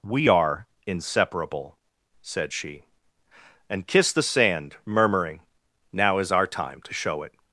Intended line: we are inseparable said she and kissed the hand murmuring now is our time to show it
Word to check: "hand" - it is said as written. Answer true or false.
false